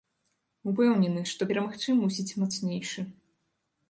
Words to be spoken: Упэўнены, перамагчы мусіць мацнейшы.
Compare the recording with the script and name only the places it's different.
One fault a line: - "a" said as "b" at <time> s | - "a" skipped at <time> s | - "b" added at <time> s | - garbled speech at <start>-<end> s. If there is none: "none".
- "што" added at 1.3 s